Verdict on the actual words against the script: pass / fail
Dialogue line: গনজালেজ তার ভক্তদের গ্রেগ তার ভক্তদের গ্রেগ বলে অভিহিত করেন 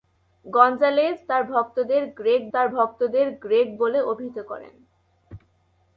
pass